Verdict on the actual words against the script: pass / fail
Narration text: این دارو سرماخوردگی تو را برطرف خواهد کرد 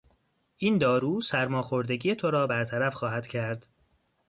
pass